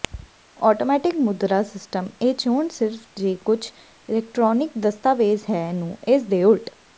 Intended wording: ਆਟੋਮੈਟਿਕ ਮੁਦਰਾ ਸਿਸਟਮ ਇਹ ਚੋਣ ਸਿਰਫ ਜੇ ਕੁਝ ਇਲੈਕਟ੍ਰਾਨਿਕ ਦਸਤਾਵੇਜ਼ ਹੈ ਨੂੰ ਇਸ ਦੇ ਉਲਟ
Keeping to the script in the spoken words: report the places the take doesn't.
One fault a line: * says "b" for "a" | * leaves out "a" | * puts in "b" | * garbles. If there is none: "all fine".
all fine